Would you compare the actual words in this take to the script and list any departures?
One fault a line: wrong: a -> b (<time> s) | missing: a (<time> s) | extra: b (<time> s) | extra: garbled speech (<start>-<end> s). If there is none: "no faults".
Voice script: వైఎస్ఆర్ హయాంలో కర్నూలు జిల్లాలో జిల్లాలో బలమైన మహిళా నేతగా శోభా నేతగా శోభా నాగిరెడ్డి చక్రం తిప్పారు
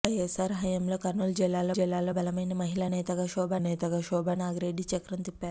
no faults